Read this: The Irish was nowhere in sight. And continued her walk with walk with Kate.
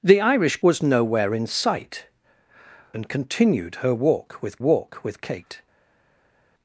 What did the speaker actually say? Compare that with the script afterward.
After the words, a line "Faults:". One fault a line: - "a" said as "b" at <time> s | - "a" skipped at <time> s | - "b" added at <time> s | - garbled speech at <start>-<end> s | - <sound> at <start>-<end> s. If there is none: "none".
The Irish was nowhere in sight. And continued her walk with walk with Kate.
Faults:
none